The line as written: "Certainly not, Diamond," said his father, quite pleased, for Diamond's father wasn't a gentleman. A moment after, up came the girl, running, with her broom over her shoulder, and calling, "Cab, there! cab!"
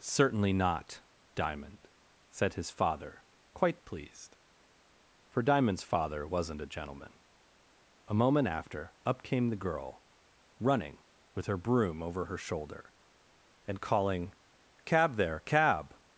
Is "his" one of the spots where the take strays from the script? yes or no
no